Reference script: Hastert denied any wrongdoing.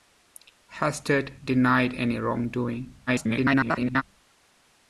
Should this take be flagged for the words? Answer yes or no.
yes